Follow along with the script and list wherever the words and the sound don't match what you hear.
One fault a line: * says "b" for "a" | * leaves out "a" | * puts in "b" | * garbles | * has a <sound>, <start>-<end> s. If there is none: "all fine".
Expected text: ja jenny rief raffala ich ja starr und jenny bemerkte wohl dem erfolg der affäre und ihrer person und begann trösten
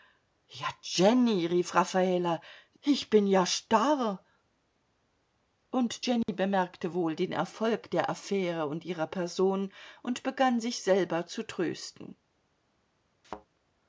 * puts in "bin"
* has a dropout, 6.2-6.3 s
* says "den" for "dem"
* puts in "sich selber zu"
* has a thud, 13.2-13.5 s